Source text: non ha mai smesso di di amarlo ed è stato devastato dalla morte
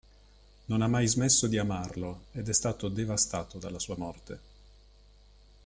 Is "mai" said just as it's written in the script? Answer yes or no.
yes